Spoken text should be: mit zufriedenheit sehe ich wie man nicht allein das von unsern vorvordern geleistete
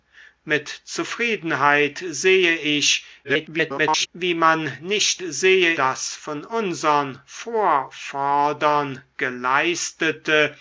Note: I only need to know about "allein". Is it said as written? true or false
false